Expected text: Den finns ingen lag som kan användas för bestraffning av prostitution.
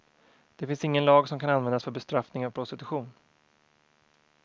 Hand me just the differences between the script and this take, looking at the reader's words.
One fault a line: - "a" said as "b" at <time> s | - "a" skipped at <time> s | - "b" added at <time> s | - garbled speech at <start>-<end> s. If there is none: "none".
- "Den" said as "Det" at 0.6 s